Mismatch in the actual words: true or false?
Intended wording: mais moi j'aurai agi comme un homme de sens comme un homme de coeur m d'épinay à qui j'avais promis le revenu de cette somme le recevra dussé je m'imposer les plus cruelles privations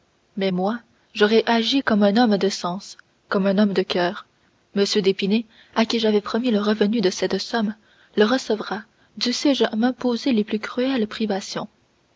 false